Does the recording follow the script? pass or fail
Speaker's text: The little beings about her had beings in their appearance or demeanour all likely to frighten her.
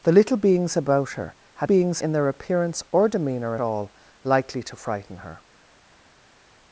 pass